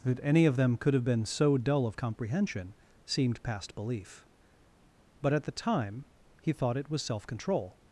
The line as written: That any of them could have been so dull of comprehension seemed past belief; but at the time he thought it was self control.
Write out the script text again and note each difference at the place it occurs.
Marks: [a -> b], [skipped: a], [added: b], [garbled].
That any of them could have been so dull of comprehension seemed past belief; but at the time he thought it was self control.